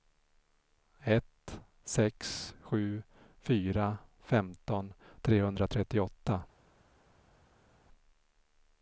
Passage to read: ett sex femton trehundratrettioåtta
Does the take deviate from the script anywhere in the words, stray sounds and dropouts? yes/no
yes